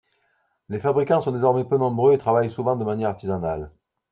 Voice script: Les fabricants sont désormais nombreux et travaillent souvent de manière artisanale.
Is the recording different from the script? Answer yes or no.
yes